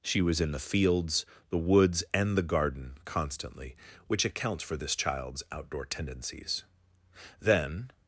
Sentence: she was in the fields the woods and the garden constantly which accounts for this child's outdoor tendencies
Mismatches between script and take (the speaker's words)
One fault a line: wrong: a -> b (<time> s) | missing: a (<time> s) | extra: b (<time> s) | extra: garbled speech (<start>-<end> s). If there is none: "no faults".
extra: then (7.4 s)